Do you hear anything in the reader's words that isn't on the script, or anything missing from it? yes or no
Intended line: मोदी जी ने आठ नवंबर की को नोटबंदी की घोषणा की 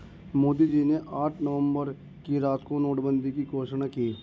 yes